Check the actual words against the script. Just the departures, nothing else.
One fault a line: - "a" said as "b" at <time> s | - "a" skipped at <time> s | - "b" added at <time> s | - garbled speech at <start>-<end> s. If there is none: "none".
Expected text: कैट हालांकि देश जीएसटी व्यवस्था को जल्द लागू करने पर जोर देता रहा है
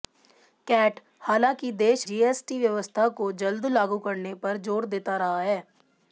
none